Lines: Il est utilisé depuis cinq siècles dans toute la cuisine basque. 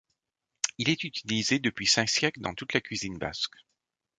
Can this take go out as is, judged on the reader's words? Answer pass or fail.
pass